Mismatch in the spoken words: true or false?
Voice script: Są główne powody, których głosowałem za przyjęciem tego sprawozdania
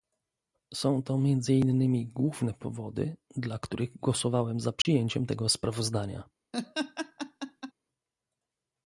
true